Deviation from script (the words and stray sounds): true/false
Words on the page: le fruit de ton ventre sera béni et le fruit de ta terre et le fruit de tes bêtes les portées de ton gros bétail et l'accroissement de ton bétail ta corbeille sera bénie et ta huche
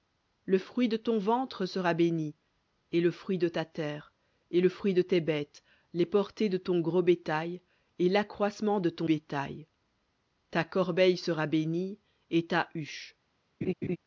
true